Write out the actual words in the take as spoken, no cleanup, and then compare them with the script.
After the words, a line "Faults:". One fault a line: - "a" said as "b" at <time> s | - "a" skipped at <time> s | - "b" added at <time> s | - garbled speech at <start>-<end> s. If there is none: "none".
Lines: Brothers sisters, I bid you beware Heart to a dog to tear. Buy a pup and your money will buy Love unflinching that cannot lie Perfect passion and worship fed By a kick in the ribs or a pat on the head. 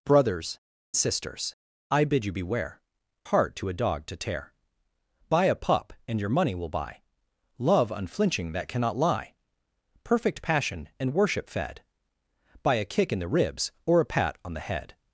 Brothers sisters, I bid you beware Heart to a dog to tear. Buy a pup and your money will buy Love unflinching that cannot lie Perfect passion and worship fed By a kick in the ribs or a pat on the head.
Faults:
none